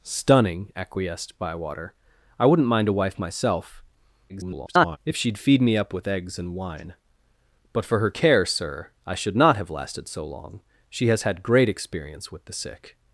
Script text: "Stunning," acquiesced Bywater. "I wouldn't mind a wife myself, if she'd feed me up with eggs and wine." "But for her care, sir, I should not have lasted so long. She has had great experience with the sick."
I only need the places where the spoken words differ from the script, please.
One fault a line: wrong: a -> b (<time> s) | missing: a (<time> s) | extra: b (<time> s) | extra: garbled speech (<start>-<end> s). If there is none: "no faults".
extra: garbled speech (4.3-5.0 s)